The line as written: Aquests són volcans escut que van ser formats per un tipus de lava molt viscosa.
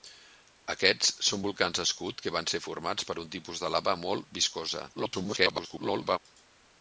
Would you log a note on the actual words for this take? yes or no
yes